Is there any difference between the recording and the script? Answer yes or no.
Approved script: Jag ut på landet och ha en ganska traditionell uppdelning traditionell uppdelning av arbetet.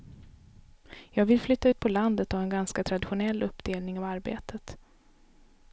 yes